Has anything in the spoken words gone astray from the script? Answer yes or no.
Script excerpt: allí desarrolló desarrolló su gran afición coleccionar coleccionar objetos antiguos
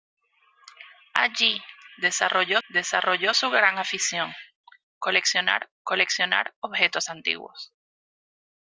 no